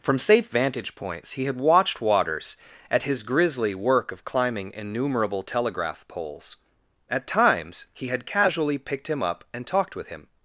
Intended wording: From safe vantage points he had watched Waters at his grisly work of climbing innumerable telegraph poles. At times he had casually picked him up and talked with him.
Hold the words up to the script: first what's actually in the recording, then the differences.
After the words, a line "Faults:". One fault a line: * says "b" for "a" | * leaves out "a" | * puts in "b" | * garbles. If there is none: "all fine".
From safe vantage points he had watched Waters at his grisly work of climbing innumerable telegraph poles. At times he had casually picked him up and talked with him.
Faults:
all fine